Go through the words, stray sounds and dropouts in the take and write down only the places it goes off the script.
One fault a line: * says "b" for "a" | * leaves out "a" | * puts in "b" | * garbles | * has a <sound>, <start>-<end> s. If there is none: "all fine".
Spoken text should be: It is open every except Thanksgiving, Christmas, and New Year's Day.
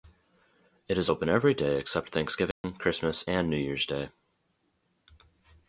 * puts in "day"
* has a dropout, 2.5-2.6 s